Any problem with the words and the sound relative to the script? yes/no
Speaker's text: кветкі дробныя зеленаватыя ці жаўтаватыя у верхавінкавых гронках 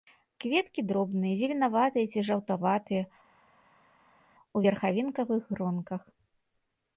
no